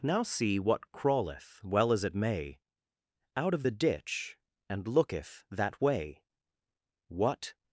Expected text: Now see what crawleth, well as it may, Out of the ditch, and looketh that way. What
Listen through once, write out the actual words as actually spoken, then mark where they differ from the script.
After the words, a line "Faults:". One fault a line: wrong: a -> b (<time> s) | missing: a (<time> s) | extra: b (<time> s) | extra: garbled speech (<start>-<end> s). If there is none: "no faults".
Now see what crawleth, well as it may, Out of the ditch, and looketh that way. What
Faults:
no faults